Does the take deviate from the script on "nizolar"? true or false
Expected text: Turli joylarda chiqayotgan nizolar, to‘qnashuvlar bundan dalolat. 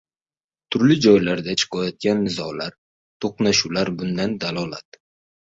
false